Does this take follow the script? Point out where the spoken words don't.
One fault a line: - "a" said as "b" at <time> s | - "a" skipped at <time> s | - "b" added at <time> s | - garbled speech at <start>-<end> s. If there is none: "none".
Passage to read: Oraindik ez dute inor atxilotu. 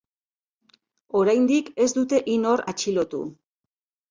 none